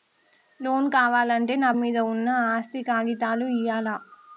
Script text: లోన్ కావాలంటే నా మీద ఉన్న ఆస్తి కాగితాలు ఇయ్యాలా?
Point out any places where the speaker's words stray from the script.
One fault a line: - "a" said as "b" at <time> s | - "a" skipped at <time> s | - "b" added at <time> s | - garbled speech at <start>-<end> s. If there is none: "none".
none